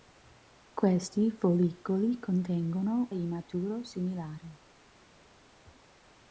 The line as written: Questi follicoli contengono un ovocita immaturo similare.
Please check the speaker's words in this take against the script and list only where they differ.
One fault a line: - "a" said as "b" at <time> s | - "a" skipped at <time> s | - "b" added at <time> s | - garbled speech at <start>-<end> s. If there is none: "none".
- "un ovocita" skipped at 3.1 s